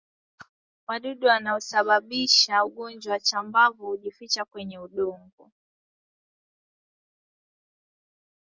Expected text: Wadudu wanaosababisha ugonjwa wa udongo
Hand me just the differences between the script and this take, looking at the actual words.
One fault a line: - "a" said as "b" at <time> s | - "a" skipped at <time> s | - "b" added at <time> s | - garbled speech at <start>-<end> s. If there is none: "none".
- "chambavu hujificha kwenye" added at 3.2 s